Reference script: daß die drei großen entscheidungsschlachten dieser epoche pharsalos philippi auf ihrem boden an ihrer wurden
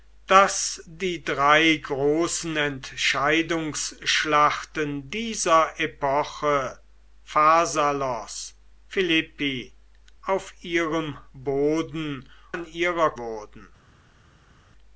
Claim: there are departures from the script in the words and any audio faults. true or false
false